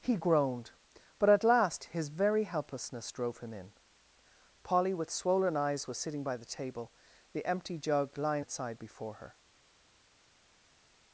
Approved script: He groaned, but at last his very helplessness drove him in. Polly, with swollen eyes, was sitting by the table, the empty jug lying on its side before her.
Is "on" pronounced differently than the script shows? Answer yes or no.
yes